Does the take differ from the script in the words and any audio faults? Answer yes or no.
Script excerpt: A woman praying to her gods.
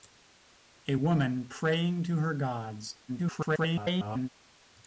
yes